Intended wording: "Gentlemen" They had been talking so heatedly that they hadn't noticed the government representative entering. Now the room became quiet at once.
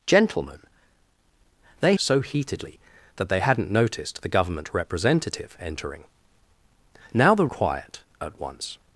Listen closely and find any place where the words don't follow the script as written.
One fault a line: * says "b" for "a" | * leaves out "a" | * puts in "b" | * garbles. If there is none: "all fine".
* leaves out "had been talking"
* leaves out "room became"